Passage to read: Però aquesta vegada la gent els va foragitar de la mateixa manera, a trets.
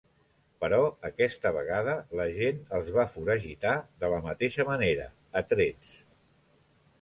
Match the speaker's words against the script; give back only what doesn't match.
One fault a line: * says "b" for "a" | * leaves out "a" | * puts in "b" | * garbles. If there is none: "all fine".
all fine